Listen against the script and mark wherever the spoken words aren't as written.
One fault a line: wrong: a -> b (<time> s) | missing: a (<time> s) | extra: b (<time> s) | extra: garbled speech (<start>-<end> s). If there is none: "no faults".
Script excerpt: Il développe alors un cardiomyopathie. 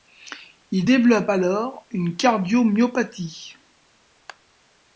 wrong: un -> une (1.9 s)